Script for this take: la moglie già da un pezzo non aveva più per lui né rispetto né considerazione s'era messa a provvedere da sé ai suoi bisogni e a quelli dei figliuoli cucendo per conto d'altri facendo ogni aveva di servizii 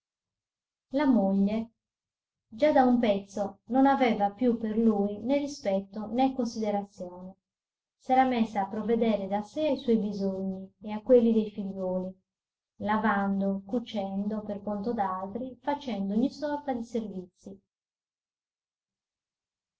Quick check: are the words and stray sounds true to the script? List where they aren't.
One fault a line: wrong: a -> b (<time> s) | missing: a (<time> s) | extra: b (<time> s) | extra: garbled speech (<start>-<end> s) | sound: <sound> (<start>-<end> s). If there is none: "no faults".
extra: lavando (12.8 s)
wrong: aveva -> sorta (16.3 s)